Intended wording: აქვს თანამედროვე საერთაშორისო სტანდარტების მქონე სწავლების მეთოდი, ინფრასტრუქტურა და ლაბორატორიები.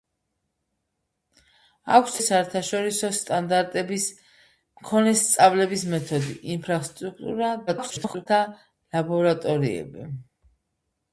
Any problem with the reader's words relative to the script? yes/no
yes